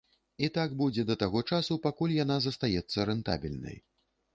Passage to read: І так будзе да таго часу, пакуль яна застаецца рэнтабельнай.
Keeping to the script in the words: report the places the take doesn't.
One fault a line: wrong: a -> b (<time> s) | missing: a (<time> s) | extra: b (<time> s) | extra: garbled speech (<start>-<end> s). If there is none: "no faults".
no faults